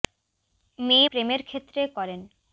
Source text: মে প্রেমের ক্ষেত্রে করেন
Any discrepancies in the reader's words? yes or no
no